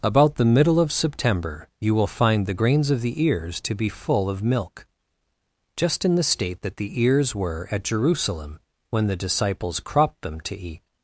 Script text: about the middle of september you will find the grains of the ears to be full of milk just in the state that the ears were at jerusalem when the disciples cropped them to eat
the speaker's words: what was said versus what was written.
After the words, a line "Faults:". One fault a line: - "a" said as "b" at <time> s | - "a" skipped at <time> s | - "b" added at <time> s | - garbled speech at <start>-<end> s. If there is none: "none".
about the middle of september you will find the grains of the ears to be full of milk just in the state that the ears were at jerusalem when the disciples cropped them to eat
Faults:
none